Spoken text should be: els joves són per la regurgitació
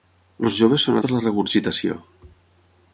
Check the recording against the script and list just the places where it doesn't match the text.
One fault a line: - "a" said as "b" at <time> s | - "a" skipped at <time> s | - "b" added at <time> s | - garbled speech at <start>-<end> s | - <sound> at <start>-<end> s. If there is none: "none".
none